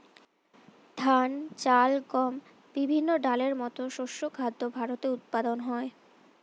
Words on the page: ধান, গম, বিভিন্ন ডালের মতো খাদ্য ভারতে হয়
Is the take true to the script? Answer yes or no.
no